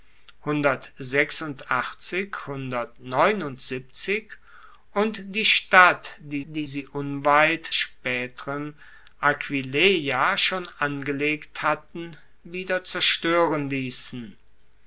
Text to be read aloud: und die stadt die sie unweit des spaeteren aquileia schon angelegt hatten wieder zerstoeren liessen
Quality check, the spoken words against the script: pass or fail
fail